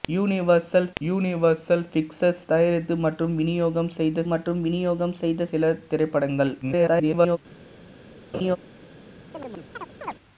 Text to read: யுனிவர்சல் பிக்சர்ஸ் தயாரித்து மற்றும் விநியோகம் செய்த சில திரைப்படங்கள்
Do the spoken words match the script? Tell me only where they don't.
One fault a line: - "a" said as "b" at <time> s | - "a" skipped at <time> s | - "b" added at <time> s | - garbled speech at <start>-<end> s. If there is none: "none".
- "யுனிவர்சல்" added at 1.0 s
- "மற்றும் விநியோகம் செய்த" added at 4.2 s
- garbled speech at 6.6-7.4 s